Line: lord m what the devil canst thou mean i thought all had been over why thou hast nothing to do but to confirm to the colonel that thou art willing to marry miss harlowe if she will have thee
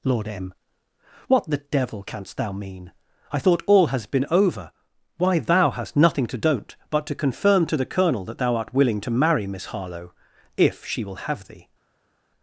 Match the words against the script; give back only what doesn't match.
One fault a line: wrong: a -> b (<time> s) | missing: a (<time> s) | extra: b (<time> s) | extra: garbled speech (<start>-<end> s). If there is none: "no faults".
wrong: had -> has (3.9 s)
wrong: do -> don't (6.4 s)